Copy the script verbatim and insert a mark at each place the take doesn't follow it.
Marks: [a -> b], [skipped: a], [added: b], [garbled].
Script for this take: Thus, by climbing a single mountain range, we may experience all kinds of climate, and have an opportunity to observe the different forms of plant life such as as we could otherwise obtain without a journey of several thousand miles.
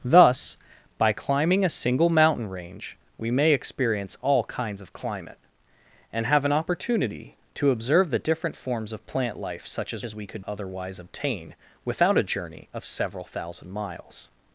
Thus, by climbing a single mountain range, we may experience all kinds of climate, and have an opportunity to observe the different forms of plant life such as as we could otherwise obtain without a journey of several thousand miles.